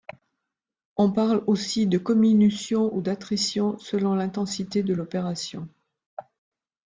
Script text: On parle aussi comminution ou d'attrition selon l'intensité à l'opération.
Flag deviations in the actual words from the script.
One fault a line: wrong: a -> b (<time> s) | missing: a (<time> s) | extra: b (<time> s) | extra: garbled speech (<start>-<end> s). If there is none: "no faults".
extra: de (1.8 s)
wrong: à -> de (4.8 s)